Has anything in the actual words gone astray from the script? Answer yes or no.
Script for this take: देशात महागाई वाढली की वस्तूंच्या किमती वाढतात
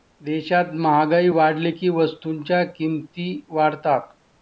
no